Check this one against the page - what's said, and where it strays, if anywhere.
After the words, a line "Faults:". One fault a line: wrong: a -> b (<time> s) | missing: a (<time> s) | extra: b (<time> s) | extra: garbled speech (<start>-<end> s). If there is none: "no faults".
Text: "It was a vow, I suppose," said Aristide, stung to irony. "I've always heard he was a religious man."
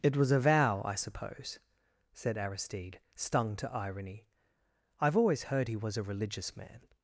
"It was a vow, I suppose," said Aristide, stung to irony. "I've always heard he was a religious man."
Faults:
no faults